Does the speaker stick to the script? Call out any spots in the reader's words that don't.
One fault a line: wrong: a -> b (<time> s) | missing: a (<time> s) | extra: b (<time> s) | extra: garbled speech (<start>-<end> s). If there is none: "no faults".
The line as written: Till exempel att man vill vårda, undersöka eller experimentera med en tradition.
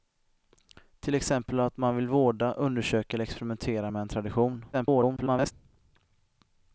extra: garbled speech (4.7-5.5 s)